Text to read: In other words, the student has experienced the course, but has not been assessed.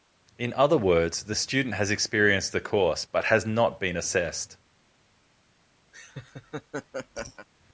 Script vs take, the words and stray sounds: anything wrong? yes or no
yes